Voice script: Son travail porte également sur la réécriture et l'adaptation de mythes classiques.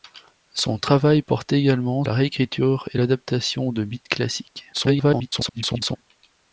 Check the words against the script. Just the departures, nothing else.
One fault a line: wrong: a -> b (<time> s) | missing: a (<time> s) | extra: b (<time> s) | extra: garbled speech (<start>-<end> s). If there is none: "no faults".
missing: sur (2.0 s)
extra: garbled speech (4.7-6.0 s)